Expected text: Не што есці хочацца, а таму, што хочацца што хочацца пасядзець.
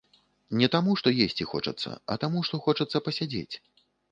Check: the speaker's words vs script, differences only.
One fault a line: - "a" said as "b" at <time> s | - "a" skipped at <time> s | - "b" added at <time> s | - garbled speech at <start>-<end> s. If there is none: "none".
- "таму" added at 0.8 s
- "што хочацца" skipped at 3.1 s